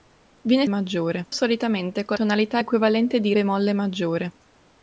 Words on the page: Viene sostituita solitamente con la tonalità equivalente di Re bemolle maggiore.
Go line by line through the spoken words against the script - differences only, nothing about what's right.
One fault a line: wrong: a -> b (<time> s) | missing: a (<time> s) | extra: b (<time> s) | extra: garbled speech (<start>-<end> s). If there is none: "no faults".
wrong: sostituita -> maggiore (0.7 s)
missing: la (2.2 s)
missing: Re (3.3 s)